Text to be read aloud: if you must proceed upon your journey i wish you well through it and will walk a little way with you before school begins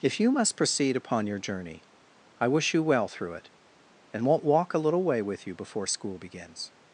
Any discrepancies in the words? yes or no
yes